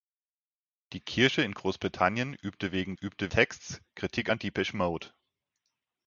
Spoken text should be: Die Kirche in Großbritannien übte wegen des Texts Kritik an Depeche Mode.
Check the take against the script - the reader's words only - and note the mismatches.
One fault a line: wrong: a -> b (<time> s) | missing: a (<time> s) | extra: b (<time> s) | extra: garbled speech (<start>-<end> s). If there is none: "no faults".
wrong: des -> übte (2.9 s)